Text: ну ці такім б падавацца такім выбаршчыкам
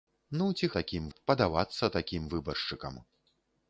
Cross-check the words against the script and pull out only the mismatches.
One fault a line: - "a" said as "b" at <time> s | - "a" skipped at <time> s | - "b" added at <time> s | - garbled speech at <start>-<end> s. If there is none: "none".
none